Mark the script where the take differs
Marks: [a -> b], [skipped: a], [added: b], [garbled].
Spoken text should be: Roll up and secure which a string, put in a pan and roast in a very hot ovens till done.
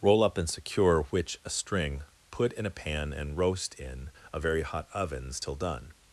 Roll up and secure which a string, put in a pan and roast in a very hot ovens till done.